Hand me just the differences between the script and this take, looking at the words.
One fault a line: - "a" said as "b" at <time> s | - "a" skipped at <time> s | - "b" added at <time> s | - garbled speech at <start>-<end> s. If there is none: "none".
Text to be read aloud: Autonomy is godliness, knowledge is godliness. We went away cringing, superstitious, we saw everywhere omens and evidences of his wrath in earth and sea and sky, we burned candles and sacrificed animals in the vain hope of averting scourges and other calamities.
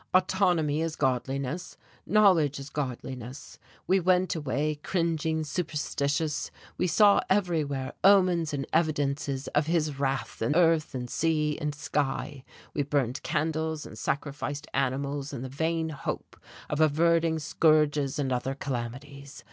none